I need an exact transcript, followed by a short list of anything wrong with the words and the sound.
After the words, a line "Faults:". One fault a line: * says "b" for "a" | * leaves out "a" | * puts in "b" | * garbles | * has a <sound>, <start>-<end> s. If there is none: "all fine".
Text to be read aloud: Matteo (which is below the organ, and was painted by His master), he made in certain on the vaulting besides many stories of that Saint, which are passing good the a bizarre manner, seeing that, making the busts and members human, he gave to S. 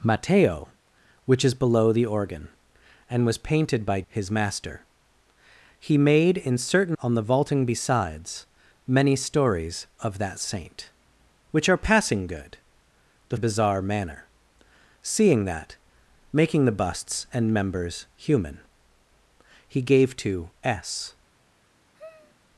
Matteo (which is below the organ, and was painted by His master), he made in certain on the vaulting besides many stories of that Saint, which are passing good the a bizarre manner, seeing that, making the busts and members human, he gave to S.
Faults:
* has a sigh, 21.9-22.4 s